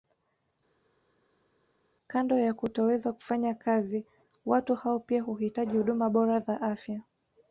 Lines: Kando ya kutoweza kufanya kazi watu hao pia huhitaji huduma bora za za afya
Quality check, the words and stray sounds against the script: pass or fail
fail